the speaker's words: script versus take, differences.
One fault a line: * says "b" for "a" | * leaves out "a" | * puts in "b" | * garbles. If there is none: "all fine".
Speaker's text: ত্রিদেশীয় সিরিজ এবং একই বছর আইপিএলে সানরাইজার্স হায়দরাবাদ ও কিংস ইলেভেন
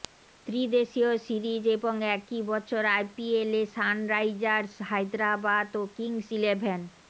all fine